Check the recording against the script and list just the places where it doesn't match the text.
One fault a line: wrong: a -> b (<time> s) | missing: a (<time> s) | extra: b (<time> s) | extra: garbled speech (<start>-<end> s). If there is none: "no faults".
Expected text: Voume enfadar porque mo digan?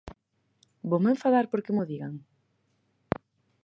no faults